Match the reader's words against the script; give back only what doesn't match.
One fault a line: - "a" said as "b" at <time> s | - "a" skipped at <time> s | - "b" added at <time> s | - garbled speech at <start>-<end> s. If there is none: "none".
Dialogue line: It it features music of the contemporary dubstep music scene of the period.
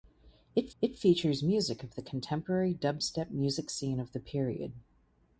none